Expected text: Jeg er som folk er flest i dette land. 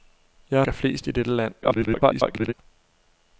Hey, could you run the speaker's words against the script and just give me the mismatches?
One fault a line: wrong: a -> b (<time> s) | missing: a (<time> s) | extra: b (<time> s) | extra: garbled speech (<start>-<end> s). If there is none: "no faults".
missing: som folk (0.7 s)
extra: garbled speech (1.6-2.5 s)